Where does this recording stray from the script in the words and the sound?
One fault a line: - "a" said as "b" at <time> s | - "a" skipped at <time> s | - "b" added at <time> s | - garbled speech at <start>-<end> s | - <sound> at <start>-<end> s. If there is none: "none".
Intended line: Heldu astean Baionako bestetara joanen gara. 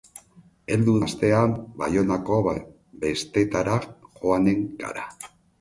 none